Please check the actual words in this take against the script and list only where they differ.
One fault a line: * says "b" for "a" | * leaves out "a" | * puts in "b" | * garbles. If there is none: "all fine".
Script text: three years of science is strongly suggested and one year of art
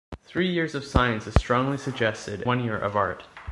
* leaves out "and"